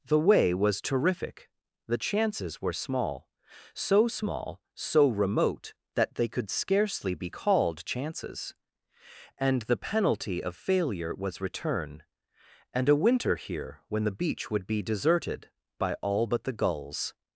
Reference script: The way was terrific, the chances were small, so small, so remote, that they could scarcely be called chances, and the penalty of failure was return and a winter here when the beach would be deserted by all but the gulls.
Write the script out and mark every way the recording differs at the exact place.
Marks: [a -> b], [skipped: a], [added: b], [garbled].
The way was terrific, the chances were small, so small, so remote, that they could scarcely be called chances, and the penalty of failure was return and a winter here when the beach would be deserted by all but the gulls.